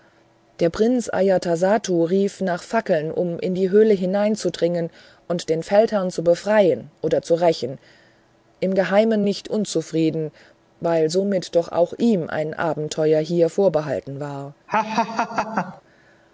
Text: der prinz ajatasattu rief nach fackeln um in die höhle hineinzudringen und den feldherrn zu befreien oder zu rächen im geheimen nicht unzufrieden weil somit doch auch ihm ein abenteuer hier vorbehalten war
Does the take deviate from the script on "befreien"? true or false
false